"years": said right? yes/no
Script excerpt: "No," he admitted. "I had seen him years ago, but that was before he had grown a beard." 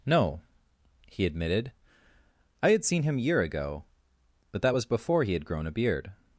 no